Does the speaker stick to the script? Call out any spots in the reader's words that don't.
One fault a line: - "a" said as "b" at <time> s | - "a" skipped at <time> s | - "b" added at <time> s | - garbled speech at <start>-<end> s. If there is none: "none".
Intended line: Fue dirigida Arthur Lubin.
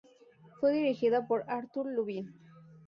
- "por" added at 1.3 s